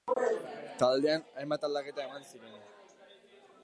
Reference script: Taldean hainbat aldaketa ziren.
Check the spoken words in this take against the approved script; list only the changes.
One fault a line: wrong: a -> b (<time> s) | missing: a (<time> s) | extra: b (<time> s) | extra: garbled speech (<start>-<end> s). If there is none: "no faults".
extra: eman (2.1 s)